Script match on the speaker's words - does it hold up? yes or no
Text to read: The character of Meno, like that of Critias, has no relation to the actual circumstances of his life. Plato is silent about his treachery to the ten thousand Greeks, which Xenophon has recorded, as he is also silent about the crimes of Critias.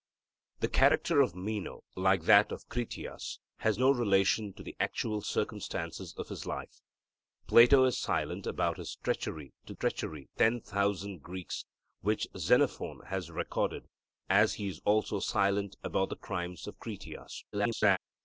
no